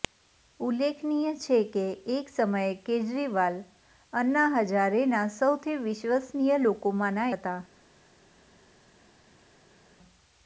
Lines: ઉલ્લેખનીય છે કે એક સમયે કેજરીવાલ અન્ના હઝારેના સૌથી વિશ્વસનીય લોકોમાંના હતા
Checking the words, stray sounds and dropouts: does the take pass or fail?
pass